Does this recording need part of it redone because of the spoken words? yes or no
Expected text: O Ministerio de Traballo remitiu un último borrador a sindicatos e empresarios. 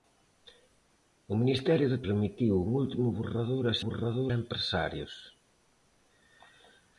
yes